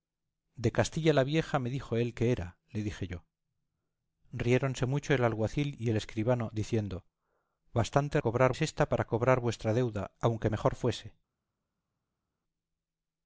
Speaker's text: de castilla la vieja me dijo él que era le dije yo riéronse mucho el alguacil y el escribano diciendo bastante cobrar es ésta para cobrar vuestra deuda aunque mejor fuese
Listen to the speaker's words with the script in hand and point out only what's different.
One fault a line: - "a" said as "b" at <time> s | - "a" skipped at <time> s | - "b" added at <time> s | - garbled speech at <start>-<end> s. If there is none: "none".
none